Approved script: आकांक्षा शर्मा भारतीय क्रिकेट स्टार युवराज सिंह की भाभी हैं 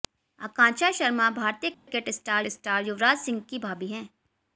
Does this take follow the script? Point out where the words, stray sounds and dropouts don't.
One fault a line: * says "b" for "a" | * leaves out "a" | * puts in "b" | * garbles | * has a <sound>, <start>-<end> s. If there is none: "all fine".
* has a dropout, 1.7-1.9 s
* puts in "स्टार"